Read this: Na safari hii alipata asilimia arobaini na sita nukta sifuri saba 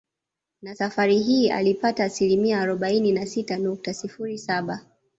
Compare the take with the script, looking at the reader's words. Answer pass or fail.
pass